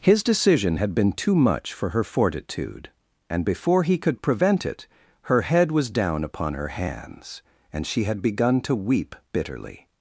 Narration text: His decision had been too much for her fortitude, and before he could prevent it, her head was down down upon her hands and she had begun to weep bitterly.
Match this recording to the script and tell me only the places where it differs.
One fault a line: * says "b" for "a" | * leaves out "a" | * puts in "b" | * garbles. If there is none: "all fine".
* leaves out "down"